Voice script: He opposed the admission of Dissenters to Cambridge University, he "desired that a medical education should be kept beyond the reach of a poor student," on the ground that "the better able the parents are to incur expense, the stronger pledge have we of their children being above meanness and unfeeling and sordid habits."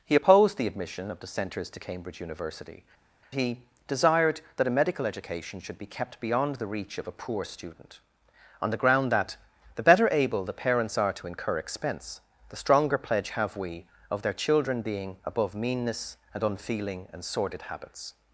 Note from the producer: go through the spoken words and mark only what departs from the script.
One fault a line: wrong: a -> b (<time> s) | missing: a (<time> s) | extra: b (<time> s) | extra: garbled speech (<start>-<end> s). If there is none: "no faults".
no faults